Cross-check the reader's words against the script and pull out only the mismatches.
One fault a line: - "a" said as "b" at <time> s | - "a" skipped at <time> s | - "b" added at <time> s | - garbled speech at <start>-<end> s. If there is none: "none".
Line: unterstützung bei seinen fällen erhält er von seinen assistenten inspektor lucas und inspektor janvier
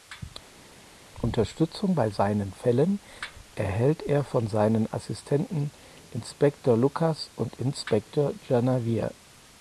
none